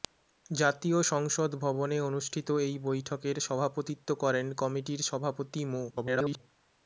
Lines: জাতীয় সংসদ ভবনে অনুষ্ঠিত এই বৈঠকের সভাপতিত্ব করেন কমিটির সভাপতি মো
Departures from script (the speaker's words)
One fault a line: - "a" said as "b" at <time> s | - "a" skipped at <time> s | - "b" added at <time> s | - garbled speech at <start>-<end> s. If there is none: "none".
- garbled speech at 5.9-6.4 s